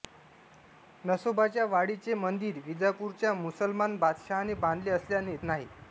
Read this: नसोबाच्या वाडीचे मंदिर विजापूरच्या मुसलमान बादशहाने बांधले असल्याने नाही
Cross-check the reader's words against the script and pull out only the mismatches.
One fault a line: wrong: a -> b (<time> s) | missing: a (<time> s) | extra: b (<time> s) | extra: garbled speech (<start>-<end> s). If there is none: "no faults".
no faults